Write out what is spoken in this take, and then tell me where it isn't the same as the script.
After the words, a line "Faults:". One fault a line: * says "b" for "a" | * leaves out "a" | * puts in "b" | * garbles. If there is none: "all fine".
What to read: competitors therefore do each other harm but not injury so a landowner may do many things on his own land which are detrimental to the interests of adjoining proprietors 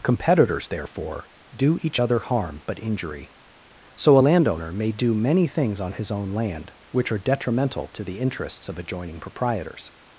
competitors therefore do each other harm but injury so a landowner may do many things on his own land which are detrimental to the interests of adjoining proprietors
Faults:
* leaves out "not"